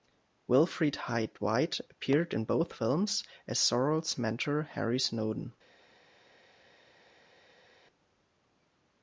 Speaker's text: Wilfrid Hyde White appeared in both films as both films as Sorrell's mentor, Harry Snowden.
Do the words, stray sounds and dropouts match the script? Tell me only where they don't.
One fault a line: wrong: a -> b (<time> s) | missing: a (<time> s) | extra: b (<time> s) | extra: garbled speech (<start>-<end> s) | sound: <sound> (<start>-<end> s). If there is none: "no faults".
missing: both films as (3.6 s)